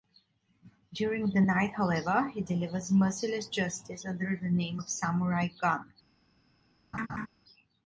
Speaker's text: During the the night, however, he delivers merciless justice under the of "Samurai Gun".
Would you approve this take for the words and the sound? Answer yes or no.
no